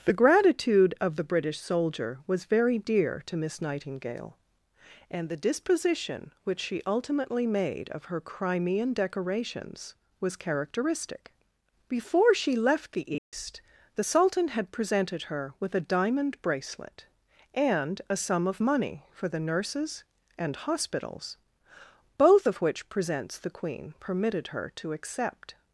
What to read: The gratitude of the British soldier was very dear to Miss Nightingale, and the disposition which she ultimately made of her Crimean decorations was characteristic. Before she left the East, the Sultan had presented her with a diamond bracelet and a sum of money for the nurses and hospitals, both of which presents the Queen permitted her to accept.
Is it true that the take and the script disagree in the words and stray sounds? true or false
true